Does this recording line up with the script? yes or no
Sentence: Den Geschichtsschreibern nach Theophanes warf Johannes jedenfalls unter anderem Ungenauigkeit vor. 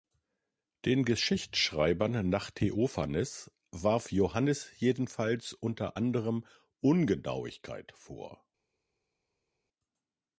yes